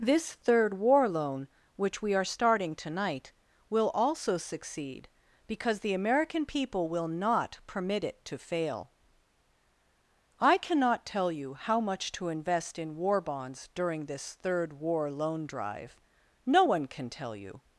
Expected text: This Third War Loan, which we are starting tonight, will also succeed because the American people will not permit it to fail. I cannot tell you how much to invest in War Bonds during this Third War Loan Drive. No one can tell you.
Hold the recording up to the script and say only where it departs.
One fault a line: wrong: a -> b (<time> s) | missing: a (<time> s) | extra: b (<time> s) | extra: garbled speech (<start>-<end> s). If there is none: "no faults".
no faults